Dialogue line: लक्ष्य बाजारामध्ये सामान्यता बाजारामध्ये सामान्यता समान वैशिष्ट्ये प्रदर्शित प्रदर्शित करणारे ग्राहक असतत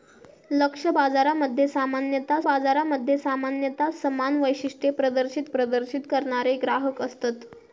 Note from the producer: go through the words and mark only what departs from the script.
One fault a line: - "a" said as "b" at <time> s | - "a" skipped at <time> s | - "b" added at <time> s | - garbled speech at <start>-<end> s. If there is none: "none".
none